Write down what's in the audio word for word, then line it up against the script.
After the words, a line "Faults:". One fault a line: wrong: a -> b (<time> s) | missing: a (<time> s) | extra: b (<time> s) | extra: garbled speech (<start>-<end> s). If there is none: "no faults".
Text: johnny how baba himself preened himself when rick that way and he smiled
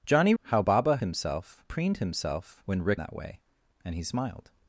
johnny how baba himself preened himself when rick that way and he smiled
Faults:
no faults